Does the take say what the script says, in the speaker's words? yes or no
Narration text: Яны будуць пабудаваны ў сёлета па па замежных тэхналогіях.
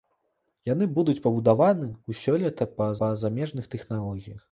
yes